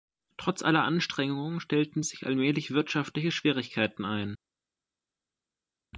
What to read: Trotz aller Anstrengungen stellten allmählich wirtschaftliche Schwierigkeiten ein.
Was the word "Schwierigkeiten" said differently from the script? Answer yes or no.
no